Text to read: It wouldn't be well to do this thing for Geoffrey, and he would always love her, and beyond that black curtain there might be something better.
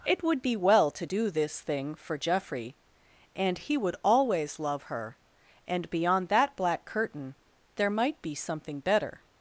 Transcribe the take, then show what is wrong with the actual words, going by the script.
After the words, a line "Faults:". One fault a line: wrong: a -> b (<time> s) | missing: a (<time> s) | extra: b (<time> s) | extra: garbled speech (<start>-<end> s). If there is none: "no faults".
It would be well to do this thing for Geoffrey, and he would always love her, and beyond that black curtain there might be something better.
Faults:
wrong: wouldn't -> would (0.2 s)